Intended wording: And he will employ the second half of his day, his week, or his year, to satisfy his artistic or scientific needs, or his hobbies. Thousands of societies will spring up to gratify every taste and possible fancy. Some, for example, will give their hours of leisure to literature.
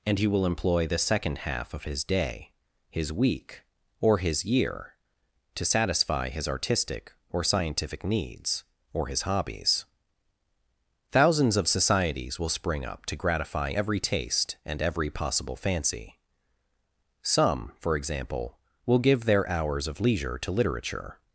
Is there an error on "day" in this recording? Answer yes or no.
no